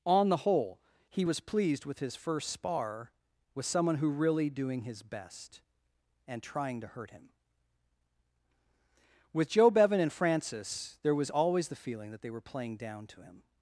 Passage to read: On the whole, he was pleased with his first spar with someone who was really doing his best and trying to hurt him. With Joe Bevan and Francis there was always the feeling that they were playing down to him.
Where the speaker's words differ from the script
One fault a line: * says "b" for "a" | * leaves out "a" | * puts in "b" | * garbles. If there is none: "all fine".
* leaves out "was"